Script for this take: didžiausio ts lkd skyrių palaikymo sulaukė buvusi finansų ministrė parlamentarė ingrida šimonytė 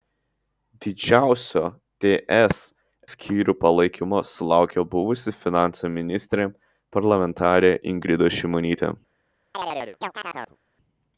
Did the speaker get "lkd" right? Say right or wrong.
wrong